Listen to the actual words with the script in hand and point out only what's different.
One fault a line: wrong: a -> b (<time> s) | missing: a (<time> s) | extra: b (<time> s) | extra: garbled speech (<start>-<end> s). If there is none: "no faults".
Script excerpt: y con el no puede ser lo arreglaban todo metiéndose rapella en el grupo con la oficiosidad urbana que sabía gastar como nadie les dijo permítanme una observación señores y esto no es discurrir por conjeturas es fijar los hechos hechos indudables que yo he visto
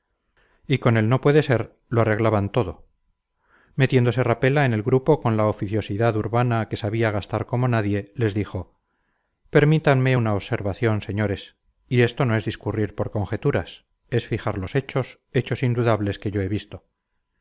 no faults